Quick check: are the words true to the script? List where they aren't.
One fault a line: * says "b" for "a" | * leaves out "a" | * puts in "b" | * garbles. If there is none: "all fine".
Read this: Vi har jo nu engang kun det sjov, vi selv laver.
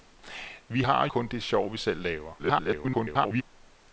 * leaves out "jo nu engang"
* garbles